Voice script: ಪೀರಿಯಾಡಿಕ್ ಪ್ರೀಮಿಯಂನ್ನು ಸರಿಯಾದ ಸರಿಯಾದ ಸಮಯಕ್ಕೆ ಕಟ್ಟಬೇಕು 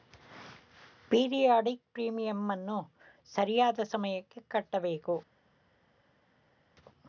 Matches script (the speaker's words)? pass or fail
fail